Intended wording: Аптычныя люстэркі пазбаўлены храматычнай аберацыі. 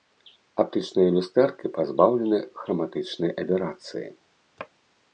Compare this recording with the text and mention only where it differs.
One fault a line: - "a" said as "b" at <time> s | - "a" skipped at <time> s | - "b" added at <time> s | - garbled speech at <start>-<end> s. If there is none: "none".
none